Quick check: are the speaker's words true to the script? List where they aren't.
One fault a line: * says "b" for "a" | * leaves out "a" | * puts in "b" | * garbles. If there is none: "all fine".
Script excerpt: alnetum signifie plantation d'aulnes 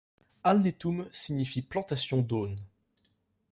all fine